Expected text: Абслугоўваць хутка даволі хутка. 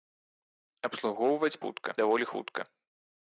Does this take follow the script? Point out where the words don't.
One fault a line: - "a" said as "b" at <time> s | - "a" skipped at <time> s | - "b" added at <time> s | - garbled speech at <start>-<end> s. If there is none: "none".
none